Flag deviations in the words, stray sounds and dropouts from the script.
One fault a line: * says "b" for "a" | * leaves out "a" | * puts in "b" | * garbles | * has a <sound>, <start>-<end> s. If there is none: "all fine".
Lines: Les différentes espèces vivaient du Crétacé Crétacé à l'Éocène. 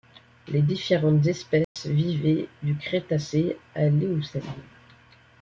* has a dropout, 1.6-1.8 s
* leaves out "Crétacé"